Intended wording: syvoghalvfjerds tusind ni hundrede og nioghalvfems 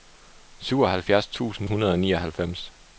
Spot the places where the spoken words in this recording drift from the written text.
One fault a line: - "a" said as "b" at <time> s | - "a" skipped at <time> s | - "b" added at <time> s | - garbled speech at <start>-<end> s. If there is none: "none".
- "ni" skipped at 1.7 s